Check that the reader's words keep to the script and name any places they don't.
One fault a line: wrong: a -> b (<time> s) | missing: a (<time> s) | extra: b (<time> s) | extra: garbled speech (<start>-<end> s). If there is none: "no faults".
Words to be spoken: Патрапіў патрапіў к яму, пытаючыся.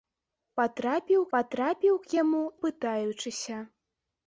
no faults